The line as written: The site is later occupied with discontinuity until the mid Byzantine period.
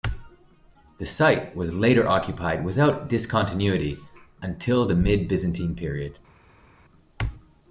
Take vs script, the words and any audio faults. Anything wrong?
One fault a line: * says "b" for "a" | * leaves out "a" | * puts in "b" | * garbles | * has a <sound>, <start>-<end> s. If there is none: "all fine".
* says "was" for "is"
* says "without" for "with"